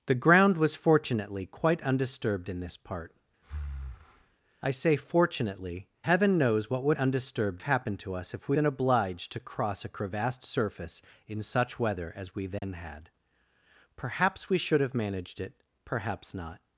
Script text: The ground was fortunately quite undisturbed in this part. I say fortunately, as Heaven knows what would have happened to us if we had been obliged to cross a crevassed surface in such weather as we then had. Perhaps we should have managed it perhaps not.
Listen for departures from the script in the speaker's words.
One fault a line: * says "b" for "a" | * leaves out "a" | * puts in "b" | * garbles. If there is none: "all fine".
* leaves out "as"
* says "undisturbed" for "have"
* leaves out "had"